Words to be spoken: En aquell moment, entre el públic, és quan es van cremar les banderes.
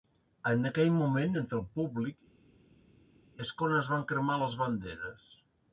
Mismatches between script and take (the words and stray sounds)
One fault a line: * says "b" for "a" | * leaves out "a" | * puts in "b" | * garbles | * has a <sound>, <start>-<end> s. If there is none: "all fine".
all fine